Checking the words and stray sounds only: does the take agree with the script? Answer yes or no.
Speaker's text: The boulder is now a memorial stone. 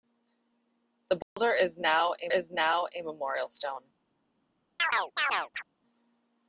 no